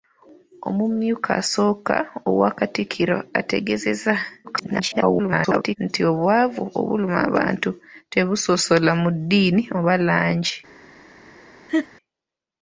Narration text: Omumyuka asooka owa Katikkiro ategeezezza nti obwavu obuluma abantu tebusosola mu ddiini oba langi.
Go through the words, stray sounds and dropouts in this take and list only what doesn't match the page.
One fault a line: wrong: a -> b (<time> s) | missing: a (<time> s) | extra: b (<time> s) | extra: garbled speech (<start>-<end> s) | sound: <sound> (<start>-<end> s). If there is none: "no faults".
extra: garbled speech (4.4-5.8 s)
sound: laugh (11.7-11.9 s)